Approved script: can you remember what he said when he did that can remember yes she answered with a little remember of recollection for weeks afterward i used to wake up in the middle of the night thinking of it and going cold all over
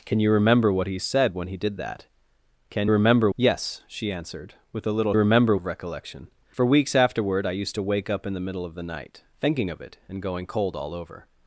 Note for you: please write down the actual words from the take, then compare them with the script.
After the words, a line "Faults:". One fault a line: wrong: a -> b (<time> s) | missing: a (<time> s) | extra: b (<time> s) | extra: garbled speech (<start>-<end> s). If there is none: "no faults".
can you remember what he said when he did that can remember yes she answered with a little remember of recollection for weeks afterward i used to wake up in the middle of the night thinking of it and going cold all over
Faults:
no faults